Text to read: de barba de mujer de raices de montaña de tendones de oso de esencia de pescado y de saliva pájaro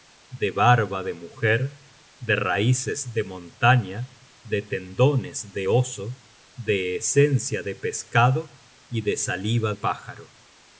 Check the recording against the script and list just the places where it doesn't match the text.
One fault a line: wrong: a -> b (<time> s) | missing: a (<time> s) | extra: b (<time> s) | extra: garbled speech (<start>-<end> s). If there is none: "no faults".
no faults